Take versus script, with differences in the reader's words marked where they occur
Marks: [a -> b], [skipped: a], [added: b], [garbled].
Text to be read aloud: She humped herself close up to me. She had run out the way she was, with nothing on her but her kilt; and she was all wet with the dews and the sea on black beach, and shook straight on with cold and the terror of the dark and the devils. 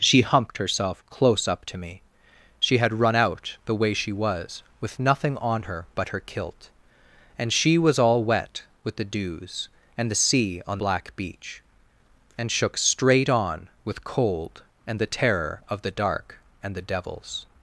She humped herself close up to me. She had run out the way she was, with nothing on her but her kilt; and she was all wet with the dews and the sea on black beach, and shook straight on with cold and the terror of the dark and the devils.